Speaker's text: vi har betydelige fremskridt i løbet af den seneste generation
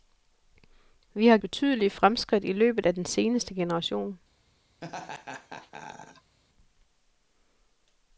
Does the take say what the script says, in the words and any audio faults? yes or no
no